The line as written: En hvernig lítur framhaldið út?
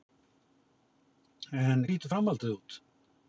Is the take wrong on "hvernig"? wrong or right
wrong